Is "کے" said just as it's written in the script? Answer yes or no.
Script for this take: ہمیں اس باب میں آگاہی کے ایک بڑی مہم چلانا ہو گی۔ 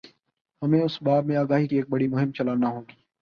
no